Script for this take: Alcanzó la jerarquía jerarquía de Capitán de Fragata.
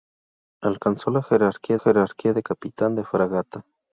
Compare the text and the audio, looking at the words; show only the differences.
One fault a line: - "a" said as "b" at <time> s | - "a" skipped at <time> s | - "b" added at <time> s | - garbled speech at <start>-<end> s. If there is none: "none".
none